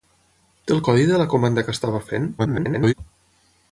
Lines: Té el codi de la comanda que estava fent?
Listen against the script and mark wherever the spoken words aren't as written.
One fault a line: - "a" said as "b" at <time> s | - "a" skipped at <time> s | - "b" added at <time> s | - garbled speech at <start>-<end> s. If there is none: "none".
- garbled speech at 2.4-2.9 s